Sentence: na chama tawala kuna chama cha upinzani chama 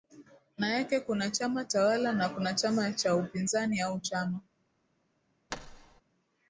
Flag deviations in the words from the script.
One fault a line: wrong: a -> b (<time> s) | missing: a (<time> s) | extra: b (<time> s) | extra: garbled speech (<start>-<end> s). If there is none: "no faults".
extra: yake kuna (0.7 s)
extra: na (2.1 s)
extra: au (3.8 s)